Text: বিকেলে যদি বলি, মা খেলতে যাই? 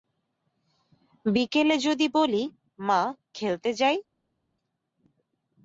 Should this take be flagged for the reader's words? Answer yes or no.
no